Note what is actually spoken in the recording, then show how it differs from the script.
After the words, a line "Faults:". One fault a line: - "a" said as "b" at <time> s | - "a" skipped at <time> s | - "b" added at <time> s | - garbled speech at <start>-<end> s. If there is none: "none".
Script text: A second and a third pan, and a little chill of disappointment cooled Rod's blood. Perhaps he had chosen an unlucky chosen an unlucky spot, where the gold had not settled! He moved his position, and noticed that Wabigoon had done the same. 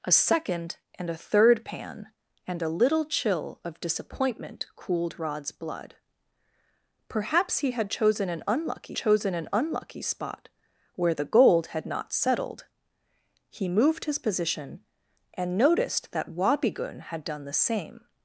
A second and a third pan, and a little chill of disappointment cooled Rod's blood. Perhaps he had chosen an unlucky chosen an unlucky spot, where the gold had not settled! He moved his position, and noticed that Wabigoon had done the same.
Faults:
none